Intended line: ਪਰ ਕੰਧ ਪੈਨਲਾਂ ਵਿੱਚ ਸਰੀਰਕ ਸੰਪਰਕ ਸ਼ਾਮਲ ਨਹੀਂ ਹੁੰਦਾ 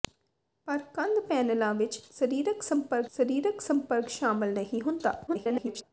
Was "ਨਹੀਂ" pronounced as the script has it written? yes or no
yes